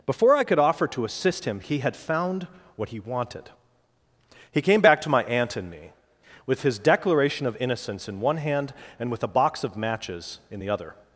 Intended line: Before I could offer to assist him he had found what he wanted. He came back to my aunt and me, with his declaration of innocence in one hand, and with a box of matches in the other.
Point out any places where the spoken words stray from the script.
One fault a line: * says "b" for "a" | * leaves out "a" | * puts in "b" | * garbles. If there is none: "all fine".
all fine